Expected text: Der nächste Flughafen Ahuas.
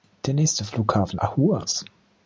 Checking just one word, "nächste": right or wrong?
right